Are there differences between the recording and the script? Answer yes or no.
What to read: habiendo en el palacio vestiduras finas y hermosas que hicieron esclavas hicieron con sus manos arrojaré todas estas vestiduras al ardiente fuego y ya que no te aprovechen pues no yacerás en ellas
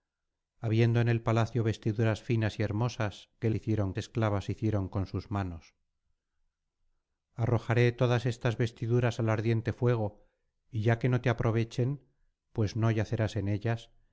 no